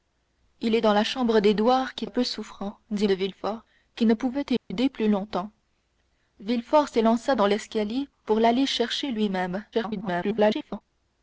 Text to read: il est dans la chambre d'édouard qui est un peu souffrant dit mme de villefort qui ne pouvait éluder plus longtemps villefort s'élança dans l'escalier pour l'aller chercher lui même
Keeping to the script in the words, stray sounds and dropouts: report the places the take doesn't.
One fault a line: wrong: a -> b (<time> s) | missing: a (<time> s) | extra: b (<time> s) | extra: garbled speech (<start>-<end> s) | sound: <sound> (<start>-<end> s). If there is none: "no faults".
missing: est (2.0 s)
missing: mme (3.1 s)
sound: dropout (4.6-4.7 s)
extra: garbled speech (9.7-10.8 s)